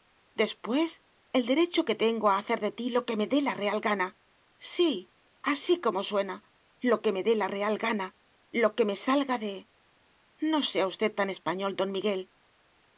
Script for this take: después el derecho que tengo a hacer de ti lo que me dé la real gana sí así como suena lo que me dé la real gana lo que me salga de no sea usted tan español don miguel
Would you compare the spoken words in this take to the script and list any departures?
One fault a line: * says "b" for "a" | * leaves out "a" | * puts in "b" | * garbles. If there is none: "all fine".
all fine